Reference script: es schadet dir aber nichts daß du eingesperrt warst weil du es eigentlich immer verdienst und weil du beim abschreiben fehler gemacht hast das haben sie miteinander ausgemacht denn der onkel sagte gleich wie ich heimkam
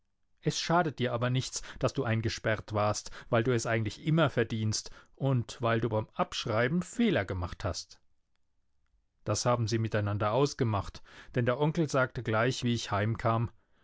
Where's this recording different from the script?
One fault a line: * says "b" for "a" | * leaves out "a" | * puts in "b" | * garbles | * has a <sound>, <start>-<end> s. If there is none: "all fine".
all fine